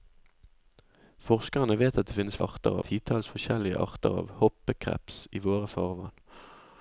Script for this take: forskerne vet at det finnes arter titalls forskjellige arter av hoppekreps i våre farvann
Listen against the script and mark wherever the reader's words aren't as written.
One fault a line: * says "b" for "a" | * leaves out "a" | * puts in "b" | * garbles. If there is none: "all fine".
all fine